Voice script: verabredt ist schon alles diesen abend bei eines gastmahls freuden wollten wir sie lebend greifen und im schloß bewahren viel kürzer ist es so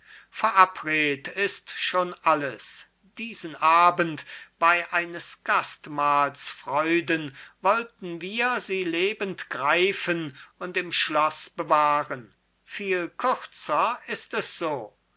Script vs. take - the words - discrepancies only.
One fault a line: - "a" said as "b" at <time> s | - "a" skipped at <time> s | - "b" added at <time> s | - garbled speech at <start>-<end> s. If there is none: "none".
none